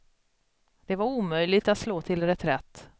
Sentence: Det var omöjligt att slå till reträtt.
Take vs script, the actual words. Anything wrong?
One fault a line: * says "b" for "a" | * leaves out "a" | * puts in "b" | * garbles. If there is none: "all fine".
all fine